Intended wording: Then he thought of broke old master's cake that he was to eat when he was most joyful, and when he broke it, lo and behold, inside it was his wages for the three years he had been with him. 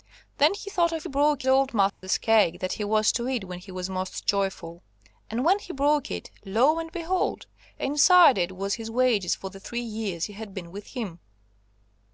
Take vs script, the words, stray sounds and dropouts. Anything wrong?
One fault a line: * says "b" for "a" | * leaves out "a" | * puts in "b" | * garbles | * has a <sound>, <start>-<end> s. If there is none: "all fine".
* has a dropout, 1.9-2.0 s